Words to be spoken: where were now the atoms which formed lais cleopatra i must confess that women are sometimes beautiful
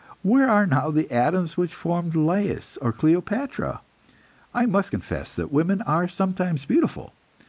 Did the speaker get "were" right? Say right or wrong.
wrong